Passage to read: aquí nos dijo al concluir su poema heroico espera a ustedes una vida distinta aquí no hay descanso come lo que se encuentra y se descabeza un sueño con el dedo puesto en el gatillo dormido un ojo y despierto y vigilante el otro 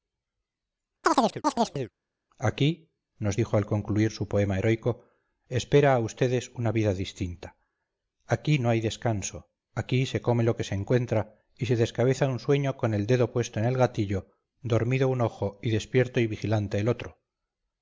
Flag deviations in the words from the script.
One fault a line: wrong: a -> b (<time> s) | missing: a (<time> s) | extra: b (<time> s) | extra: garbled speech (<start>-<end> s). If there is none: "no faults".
extra: aquí se (9.7 s)